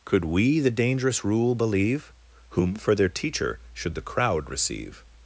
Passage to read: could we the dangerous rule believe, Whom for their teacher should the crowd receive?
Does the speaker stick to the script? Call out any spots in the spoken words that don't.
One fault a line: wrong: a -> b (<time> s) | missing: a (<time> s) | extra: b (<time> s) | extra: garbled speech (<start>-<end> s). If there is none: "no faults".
no faults